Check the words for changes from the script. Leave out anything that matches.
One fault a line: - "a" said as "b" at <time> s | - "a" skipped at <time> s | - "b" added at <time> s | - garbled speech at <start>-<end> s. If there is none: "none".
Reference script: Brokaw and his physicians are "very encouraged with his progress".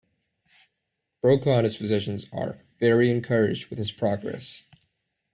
none